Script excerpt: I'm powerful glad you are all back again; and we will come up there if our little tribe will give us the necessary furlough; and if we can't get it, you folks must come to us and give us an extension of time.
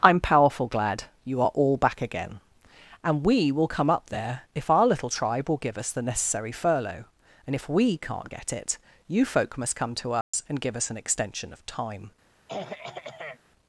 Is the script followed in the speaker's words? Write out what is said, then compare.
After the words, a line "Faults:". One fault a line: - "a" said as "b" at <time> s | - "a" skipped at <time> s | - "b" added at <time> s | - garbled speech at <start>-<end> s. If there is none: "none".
I'm powerful glad you are all back again; and we will come up there if our little tribe will give us the necessary furlough; and if we can't get it, you folk must come to us and give us an extension of time.
Faults:
- "folks" said as "folk" at 9.2 s